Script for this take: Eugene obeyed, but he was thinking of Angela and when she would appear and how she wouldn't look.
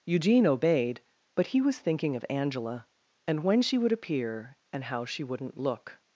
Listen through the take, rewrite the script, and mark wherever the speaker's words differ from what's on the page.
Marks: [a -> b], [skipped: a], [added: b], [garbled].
Eugene obeyed, but he was thinking of Angela and when she would appear and how she wouldn't look.